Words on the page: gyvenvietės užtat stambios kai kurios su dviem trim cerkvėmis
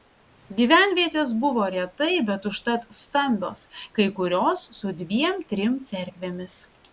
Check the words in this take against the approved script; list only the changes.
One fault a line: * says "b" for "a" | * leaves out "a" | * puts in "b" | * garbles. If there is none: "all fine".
* puts in "buvo retai bet"